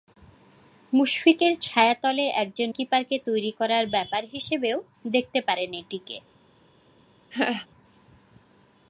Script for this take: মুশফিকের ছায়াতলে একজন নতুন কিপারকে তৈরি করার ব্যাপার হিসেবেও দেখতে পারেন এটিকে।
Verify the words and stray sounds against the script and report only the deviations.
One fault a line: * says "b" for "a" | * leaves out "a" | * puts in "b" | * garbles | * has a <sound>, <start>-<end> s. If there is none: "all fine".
* leaves out "নতুন"
* has a laugh, 7.3-7.7 s